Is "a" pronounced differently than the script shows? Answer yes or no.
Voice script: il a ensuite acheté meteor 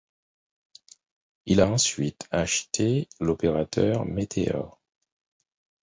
no